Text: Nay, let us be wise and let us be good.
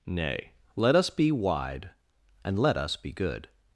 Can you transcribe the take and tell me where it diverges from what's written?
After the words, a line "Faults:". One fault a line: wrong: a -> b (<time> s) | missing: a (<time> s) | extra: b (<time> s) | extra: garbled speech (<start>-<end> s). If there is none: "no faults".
Nay, let us be wide and let us be good.
Faults:
wrong: wise -> wide (1.3 s)